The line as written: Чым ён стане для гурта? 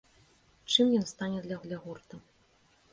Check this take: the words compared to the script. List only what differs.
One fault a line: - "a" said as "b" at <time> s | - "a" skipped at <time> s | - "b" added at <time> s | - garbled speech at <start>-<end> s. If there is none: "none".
- "для" added at 1.7 s